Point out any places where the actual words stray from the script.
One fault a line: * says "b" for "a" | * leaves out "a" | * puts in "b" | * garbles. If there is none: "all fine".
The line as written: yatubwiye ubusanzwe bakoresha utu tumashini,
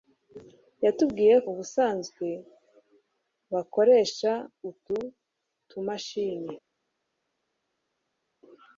all fine